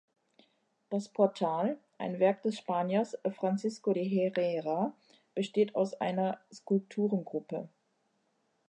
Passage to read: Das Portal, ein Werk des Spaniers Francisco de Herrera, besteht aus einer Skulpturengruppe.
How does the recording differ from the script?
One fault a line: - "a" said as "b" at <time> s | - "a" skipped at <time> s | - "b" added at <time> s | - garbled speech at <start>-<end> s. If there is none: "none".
none